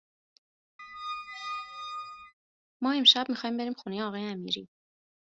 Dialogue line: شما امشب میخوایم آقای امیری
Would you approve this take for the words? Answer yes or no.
no